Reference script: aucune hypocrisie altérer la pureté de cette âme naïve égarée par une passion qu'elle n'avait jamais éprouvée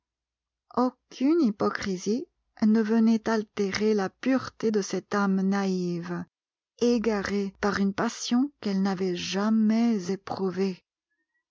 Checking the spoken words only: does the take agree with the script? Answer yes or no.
no